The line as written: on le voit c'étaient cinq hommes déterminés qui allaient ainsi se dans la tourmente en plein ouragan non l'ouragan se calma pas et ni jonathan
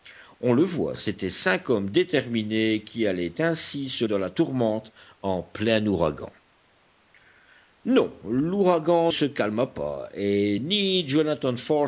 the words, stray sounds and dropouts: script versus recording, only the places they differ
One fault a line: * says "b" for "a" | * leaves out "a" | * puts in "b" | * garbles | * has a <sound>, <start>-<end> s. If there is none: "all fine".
all fine